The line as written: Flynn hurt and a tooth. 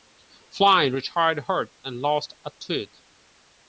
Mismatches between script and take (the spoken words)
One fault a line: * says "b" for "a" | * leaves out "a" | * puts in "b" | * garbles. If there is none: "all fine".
* puts in "retired"
* puts in "lost"